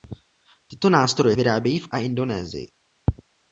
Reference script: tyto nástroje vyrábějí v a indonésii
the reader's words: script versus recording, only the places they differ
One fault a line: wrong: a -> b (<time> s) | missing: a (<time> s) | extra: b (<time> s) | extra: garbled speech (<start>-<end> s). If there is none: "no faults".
no faults